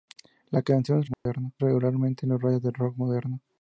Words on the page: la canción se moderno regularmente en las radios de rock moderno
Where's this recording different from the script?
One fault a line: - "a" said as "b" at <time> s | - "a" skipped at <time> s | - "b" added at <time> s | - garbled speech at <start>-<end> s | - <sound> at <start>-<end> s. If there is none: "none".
- dropout at 1.1-1.3 s